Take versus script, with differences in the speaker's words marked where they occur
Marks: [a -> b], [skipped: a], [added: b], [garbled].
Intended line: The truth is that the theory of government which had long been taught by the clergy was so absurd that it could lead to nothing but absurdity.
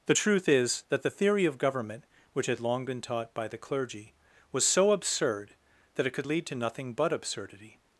The truth is that the theory of government which had long been taught by the clergy was so absurd that it could lead to nothing but absurdity.